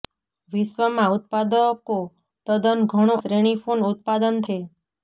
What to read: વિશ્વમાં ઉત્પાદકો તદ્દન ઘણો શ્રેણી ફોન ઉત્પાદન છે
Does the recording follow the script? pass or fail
pass